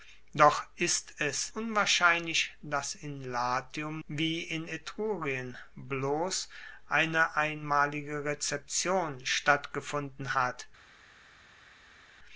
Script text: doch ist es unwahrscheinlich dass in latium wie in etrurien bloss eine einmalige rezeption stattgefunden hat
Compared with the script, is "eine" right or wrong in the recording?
right